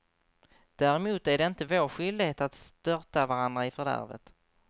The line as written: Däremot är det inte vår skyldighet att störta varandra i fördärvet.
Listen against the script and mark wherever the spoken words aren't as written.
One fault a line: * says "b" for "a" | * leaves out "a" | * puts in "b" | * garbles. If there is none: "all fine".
all fine